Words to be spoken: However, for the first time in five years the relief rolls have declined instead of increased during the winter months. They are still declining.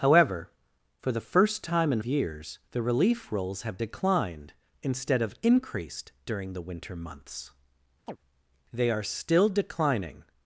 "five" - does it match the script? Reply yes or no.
no